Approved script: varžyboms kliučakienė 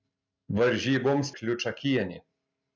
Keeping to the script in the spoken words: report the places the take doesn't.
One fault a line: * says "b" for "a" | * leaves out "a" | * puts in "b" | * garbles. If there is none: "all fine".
all fine